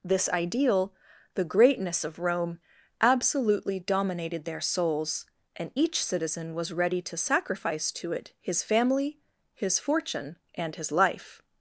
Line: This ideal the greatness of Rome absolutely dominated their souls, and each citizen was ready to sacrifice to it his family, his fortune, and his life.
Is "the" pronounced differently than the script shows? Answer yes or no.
no